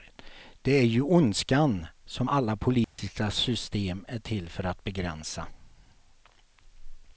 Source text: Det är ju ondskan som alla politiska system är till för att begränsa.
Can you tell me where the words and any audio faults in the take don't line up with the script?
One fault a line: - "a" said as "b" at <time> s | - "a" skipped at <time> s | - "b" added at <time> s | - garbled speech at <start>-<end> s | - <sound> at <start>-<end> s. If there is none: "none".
- dropout at 2.8-3.0 s